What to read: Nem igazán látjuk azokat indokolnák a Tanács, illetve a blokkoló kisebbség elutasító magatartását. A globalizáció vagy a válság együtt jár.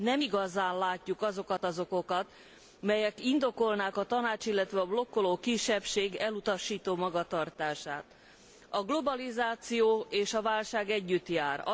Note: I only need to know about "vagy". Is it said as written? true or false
false